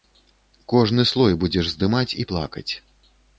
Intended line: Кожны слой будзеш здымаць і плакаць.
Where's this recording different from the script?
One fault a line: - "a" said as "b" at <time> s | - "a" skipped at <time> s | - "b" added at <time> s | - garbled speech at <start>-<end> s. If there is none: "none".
none